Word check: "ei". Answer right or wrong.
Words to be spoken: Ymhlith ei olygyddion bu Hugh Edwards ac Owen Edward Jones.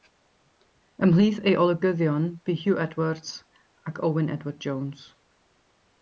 right